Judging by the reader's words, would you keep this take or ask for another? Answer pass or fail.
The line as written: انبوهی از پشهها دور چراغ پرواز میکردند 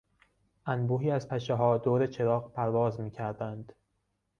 pass